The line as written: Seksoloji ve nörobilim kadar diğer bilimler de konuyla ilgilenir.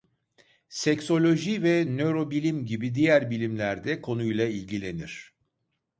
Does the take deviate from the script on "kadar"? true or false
true